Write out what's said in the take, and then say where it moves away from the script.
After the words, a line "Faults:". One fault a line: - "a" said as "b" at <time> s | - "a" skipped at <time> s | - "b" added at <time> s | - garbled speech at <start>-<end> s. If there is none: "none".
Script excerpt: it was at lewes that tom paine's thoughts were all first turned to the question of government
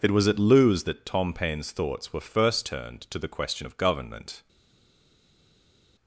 it was at lewes that tom paine's thoughts were first turned to the question of government
Faults:
- "all" skipped at 2.2 s